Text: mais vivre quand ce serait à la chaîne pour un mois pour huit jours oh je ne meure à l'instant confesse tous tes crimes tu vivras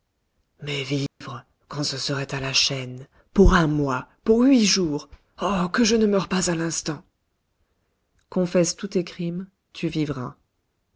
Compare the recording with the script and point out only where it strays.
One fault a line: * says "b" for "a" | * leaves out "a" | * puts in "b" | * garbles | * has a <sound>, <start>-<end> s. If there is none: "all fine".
* has a dropout, 1.1-1.2 s
* puts in "que"
* puts in "pas"